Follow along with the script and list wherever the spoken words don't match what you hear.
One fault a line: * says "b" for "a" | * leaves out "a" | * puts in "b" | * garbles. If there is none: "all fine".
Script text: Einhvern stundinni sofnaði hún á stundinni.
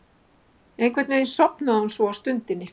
* says "veginn" for "stundinni"
* puts in "svo"